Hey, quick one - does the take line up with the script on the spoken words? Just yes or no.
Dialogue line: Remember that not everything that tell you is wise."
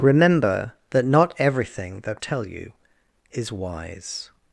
yes